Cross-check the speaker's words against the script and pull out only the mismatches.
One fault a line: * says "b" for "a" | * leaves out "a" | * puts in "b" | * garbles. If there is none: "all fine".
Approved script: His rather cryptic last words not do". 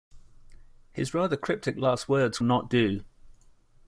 all fine